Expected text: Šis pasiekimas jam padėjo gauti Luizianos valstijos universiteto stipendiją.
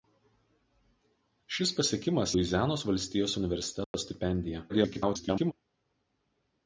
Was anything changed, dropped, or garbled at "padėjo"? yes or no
yes